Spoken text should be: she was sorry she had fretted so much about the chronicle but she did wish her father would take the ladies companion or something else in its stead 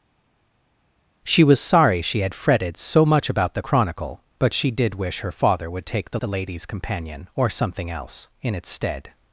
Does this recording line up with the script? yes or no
no